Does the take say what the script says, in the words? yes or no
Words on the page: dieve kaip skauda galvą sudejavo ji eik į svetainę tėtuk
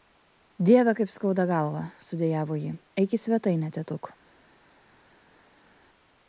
yes